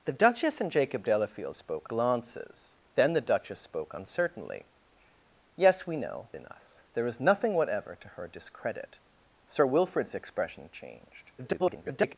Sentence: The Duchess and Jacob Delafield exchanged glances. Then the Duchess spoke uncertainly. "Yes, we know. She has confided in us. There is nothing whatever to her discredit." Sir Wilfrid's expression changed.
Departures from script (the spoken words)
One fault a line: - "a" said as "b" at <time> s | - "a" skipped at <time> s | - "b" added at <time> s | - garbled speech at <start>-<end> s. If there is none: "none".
- "exchanged" said as "spoke" at 1.5 s
- "She has confided" skipped at 6.3 s
- garbled speech at 11.4-12.2 s